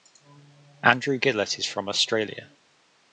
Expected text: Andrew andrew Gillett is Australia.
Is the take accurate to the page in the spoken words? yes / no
no